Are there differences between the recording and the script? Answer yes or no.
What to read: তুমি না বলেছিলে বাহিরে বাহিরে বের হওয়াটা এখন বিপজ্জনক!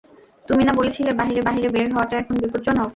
no